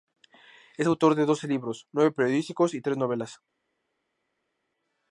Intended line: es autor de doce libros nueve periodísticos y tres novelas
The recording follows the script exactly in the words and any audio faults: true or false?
true